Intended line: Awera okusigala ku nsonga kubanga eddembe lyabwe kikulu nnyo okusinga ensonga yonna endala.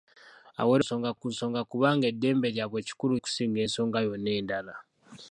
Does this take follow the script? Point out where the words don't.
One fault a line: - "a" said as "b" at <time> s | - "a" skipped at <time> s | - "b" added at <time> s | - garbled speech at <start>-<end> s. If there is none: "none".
- "okusigala" said as "nsonga" at 0.8 s
- "nnyo" skipped at 3.1 s